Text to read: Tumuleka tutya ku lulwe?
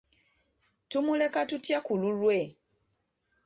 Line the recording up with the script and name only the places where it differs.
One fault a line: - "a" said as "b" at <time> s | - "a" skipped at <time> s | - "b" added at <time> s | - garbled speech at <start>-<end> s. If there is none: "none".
none